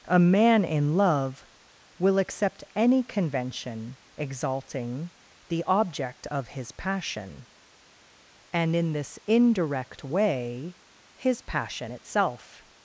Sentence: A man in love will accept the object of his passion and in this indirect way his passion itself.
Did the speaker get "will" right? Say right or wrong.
right